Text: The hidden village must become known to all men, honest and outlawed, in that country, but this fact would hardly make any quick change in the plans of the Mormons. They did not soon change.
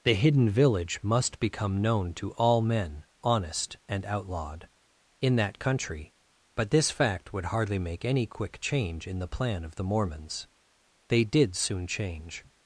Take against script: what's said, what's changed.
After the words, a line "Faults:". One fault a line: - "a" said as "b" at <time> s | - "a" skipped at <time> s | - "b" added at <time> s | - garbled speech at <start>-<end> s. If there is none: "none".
The hidden village must become known to all men, honest and outlawed, in that country, but this fact would hardly make any quick change in the plan of the Mormons. They did soon change.
Faults:
- "plans" said as "plan" at 9.3 s
- "not" skipped at 11.6 s